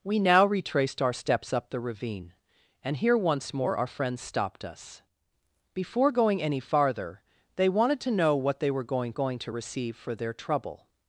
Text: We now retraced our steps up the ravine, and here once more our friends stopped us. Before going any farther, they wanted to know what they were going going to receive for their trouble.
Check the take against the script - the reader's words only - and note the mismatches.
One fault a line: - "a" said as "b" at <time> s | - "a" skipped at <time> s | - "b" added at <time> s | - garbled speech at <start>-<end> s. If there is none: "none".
none